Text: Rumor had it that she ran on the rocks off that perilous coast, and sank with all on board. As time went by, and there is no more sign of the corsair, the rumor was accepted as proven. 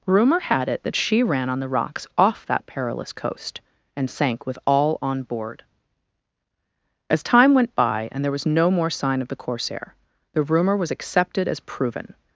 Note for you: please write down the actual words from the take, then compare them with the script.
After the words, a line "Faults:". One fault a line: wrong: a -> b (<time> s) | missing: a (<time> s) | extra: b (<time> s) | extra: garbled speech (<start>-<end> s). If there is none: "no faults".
Rumor had it that she ran on the rocks off that perilous coast, and sank with all on board. As time went by, and there was no more sign of the corsair, the rumor was accepted as proven.
Faults:
wrong: is -> was (8.3 s)